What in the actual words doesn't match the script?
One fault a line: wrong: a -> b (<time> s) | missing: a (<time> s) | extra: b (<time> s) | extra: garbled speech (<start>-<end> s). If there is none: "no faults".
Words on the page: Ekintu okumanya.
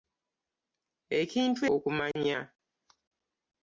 no faults